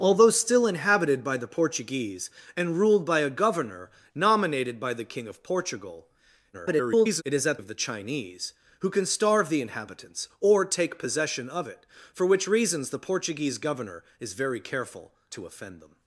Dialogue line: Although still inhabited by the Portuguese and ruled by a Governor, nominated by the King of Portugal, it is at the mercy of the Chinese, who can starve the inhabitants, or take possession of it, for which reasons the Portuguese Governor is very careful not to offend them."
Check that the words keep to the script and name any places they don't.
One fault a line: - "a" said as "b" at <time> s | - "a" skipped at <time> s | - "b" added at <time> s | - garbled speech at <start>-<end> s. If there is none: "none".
- garbled speech at 6.5-7.2 s
- "the mercy" skipped at 7.6 s
- "not" skipped at 15.1 s